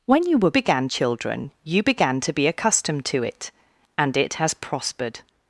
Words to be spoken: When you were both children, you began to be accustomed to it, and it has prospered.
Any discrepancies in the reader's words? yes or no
yes